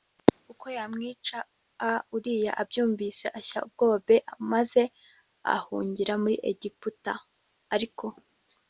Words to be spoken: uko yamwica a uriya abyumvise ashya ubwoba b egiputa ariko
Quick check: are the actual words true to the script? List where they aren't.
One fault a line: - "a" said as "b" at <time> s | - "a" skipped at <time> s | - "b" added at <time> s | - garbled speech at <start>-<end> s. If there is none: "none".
- "maze ahungira muri" added at 4.5 s